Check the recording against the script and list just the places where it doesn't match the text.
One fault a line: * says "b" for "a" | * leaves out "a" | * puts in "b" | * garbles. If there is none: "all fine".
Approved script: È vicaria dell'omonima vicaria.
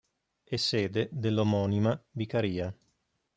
* says "sede" for "vicaria"